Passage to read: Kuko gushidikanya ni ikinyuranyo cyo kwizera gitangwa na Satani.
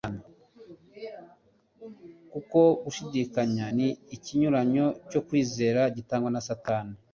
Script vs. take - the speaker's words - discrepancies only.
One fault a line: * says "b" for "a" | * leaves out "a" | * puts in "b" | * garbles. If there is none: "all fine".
all fine